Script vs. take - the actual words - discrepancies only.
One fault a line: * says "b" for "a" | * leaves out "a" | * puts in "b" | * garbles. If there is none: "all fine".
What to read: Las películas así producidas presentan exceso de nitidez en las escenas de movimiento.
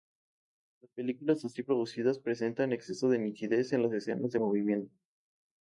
all fine